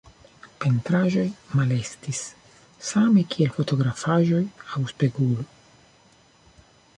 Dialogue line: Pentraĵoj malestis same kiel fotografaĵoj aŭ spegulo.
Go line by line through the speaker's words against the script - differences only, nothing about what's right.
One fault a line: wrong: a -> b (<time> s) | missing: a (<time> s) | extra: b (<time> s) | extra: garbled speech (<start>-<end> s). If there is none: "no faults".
no faults